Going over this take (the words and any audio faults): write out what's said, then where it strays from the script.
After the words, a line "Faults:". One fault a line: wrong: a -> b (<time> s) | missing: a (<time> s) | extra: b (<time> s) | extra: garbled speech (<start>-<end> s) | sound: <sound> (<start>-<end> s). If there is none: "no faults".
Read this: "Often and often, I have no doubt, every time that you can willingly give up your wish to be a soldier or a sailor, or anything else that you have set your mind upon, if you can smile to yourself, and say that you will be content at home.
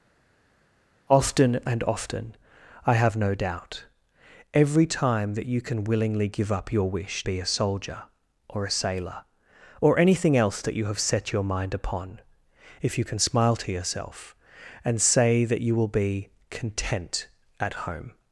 "Often and often, I have no doubt, every time that you can willingly give up your wish be a soldier or a sailor, or anything else that you have set your mind upon, if you can smile to yourself, and say that you will be content at home.
Faults:
missing: to (7.2 s)